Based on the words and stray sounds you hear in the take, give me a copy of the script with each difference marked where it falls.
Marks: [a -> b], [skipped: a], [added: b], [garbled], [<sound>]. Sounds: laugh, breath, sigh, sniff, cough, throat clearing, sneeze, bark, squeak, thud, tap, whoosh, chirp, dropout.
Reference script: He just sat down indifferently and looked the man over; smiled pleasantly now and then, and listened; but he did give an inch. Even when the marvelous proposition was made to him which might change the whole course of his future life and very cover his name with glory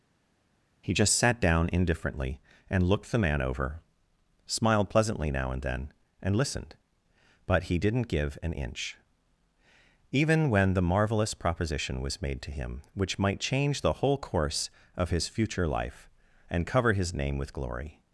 He just sat down indifferently and looked the man over; smiled pleasantly now and then, and listened; but he [did -> didn't] give an inch. Even when the marvelous proposition was made to him which might change the whole course of his future life and [skipped: very] cover his name with glory